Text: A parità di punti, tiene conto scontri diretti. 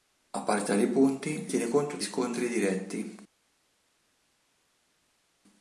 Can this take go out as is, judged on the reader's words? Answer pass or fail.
pass